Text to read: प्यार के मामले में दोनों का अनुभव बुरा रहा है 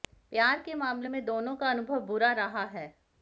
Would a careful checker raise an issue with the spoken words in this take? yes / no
no